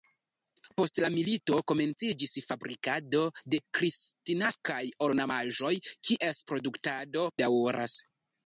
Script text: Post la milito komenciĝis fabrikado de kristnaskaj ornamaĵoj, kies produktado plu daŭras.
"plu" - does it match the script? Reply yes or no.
no